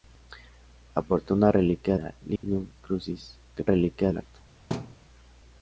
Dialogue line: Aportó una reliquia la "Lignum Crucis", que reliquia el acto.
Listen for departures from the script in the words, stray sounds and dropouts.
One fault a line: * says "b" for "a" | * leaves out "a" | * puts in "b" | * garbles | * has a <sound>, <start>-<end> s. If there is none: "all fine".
* has a dropout, 2.4-2.4 s
* has a thud, 4.7-5.0 s